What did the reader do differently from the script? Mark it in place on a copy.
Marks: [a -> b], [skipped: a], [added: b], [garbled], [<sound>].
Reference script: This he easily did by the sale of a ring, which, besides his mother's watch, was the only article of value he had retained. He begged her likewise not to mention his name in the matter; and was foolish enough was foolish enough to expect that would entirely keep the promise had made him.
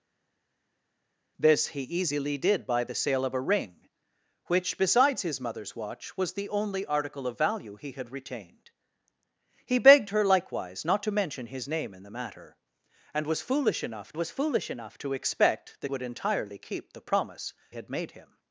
This he easily did by the sale of a ring, which, besides his mother's watch, was the only article of value he had retained. He begged her likewise not to mention his name in the matter; and was foolish enough was foolish enough to expect that would entirely keep the promise had made him.